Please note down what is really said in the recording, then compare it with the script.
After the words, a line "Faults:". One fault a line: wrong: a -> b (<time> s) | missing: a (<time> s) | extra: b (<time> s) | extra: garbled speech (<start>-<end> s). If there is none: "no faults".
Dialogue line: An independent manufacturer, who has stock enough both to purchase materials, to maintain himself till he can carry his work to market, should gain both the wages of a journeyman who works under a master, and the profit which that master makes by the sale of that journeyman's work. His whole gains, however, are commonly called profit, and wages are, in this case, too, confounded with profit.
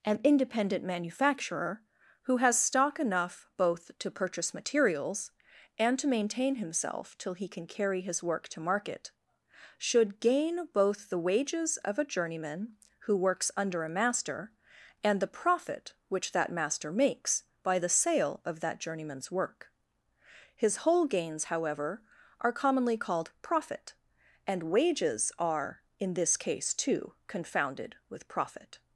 An independent manufacturer, who has stock enough both to purchase materials, and to maintain himself till he can carry his work to market, should gain both the wages of a journeyman who works under a master, and the profit which that master makes by the sale of that journeyman's work. His whole gains, however, are commonly called profit, and wages are, in this case, too, confounded with profit.
Faults:
extra: and (5.8 s)